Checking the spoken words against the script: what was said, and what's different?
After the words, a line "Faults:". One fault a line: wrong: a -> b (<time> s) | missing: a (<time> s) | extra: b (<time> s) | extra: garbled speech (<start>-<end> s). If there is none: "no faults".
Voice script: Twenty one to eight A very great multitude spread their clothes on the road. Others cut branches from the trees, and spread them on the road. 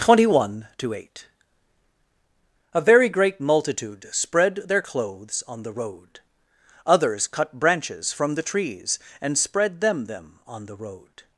Twenty one to eight A very great multitude spread their clothes on the road. Others cut branches from the trees, and spread them them on the road.
Faults:
extra: them (10.0 s)